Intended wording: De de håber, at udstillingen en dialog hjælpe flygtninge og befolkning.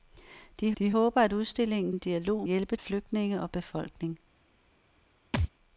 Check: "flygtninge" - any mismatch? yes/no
no